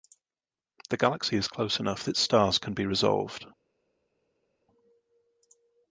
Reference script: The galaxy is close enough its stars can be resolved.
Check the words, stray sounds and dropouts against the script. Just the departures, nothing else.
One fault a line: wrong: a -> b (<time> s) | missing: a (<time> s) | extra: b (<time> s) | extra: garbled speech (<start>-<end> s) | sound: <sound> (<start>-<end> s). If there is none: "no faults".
no faults